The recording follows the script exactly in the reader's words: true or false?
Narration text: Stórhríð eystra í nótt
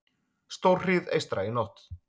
true